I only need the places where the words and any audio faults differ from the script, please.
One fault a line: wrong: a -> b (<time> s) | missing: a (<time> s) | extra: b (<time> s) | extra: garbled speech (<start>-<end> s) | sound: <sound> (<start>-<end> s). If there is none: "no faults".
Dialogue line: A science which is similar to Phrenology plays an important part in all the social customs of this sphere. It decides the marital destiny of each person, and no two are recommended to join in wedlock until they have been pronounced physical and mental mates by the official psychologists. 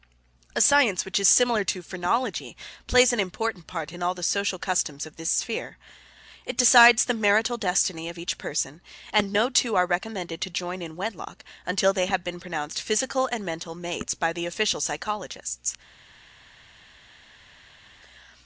no faults